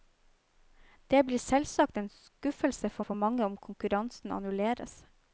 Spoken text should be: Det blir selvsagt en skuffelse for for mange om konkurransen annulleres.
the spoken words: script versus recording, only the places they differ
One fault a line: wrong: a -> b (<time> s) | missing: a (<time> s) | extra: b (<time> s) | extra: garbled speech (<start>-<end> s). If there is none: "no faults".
no faults